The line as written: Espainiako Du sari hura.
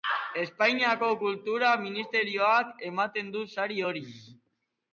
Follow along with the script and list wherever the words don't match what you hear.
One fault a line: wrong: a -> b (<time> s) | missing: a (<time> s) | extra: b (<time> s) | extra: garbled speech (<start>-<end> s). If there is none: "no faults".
extra: Kultura Ministerioak ematen (1.2 s)
wrong: hura -> hori (3.9 s)